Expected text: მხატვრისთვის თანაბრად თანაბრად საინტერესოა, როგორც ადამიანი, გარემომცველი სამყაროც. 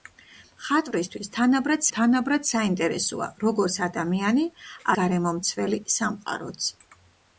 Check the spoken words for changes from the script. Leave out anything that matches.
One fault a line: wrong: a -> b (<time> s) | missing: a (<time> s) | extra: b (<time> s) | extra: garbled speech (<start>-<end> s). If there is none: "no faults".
no faults